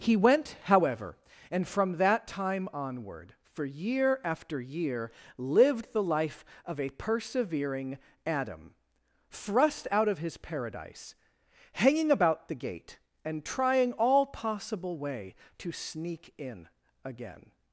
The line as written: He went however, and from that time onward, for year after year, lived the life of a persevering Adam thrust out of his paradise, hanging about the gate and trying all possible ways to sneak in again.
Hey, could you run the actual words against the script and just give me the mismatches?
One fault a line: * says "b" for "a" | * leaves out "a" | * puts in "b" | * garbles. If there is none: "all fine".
* says "way" for "ways"